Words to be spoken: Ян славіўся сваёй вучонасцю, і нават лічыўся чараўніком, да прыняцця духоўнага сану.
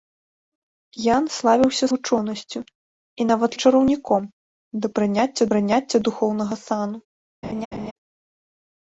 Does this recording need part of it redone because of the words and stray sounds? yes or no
yes